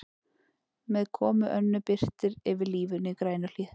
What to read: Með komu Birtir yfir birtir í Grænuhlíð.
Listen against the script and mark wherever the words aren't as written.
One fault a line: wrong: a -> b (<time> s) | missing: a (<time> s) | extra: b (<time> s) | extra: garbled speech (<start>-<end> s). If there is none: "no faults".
extra: Önnu (1.6 s)
wrong: birtir -> lífinu (2.8 s)